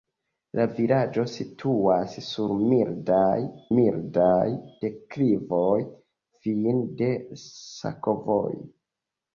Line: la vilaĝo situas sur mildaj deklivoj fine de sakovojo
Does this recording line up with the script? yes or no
no